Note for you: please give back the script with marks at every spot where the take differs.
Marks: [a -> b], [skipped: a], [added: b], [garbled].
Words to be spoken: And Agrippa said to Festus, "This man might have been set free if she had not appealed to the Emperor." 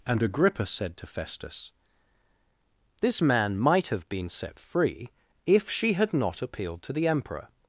And Agrippa said to Festus, "This man might have been set free if she had not appealed to the Emperor."